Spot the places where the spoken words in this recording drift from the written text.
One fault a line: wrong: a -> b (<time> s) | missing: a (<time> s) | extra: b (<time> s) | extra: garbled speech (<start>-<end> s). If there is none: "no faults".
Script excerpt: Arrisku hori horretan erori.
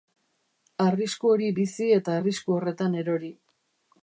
extra: bizi eta arrisku (1.6 s)